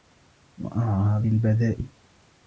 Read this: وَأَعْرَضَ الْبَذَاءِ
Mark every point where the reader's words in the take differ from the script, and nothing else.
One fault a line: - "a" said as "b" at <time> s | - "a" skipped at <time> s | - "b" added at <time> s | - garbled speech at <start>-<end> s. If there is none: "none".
none